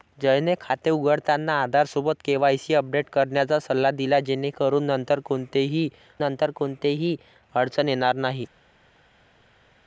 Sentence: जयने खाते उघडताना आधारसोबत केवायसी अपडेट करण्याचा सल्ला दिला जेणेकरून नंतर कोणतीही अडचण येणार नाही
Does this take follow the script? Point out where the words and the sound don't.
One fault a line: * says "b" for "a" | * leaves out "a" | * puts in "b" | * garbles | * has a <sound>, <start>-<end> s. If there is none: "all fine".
* puts in "नंतर कोणतीही"